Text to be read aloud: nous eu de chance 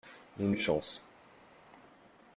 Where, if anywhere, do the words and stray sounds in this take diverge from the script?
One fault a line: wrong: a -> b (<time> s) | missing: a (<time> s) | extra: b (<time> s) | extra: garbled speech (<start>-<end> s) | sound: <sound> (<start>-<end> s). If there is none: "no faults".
no faults